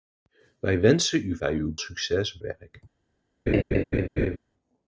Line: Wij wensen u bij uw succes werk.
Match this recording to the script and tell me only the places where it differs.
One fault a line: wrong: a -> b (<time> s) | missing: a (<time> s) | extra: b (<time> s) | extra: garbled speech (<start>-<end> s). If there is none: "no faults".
no faults